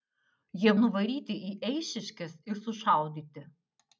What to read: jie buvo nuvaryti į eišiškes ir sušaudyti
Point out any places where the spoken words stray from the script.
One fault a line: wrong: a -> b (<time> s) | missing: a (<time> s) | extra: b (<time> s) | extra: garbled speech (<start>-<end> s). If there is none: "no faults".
missing: buvo (0.7 s)